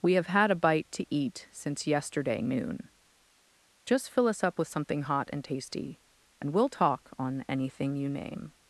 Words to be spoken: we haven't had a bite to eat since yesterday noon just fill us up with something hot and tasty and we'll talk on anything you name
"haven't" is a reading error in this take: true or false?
true